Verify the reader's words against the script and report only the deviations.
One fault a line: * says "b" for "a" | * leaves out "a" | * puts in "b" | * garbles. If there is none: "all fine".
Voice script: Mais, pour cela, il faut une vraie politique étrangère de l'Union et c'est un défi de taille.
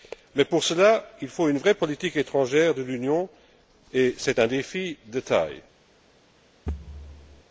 all fine